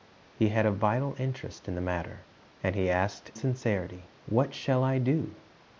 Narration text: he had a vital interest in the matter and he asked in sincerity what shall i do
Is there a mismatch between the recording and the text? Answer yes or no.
yes